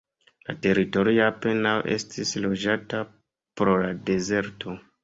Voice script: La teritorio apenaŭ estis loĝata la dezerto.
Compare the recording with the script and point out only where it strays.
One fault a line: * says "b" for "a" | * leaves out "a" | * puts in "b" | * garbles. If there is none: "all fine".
* puts in "pro"